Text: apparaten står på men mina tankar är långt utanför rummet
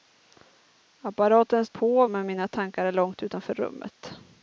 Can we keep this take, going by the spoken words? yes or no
no